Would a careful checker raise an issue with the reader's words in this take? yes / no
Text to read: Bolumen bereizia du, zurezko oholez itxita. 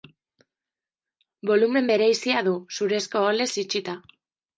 no